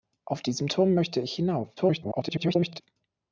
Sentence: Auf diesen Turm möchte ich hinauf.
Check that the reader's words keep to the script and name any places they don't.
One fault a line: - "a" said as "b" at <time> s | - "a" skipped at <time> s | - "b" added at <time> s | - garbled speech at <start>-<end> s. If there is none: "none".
- garbled speech at 1.8-2.8 s